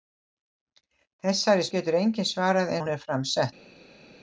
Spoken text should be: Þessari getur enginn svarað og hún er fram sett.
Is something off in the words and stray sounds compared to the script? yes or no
no